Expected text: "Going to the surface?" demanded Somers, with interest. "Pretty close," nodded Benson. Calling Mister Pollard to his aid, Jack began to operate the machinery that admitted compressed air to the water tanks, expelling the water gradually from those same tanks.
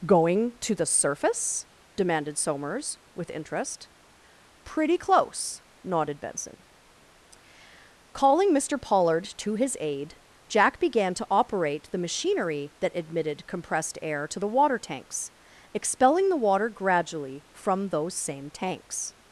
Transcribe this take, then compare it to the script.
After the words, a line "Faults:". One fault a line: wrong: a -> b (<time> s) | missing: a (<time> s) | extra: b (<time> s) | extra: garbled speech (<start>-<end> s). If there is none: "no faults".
"Going to the surface?" demanded Somers, with interest. "Pretty close," nodded Benson. Calling Mister Pollard to his aid, Jack began to operate the machinery that admitted compressed air to the water tanks, expelling the water gradually from those same tanks.
Faults:
no faults